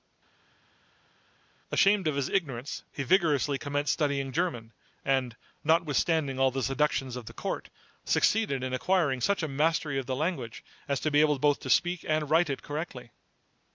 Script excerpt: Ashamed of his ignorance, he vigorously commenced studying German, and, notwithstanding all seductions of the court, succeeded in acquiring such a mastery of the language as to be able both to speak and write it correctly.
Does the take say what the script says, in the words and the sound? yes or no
no